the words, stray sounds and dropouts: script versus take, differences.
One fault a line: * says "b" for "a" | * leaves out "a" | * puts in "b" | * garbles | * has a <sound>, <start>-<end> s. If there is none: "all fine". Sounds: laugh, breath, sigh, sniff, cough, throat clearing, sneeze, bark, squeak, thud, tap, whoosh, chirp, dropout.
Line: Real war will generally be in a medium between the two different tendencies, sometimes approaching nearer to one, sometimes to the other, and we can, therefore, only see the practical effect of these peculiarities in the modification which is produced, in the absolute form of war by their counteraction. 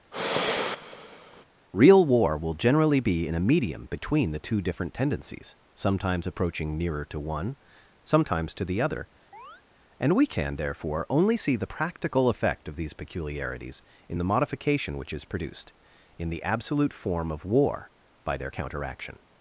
* has a sigh, 0.1-1.4 s
* has a chirp, 9.3-9.6 s